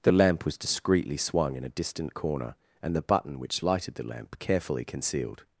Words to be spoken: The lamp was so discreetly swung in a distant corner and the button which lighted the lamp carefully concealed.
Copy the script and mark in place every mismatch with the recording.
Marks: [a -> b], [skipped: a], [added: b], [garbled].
The lamp was [skipped: so] discreetly swung in a distant corner and the button which lighted the lamp carefully concealed.